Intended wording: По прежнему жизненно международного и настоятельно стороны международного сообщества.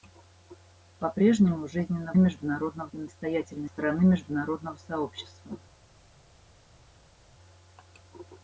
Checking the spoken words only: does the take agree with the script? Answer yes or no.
yes